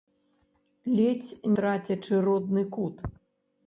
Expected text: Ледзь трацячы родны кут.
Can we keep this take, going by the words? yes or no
yes